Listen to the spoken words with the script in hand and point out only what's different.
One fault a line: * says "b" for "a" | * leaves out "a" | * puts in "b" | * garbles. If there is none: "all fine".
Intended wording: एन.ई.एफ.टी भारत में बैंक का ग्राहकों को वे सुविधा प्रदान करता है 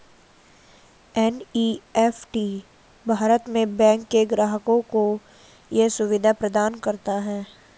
* says "के" for "का"
* says "ये" for "वे"